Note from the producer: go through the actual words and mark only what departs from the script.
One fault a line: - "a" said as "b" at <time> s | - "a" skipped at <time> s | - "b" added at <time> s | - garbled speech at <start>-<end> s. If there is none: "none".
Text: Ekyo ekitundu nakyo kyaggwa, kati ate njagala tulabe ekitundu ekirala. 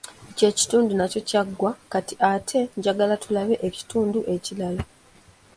none